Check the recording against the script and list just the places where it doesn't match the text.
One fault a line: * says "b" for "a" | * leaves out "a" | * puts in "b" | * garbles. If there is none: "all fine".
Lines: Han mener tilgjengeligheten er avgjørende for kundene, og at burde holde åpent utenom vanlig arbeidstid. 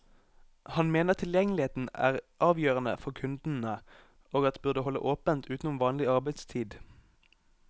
all fine